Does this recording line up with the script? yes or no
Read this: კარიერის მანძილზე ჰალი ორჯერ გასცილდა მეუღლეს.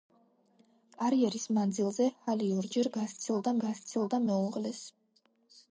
no